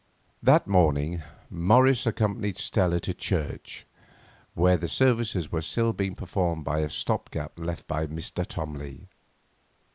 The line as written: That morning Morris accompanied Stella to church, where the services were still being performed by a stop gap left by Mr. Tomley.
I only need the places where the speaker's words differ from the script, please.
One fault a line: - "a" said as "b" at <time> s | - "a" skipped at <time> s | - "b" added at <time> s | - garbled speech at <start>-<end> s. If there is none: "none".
none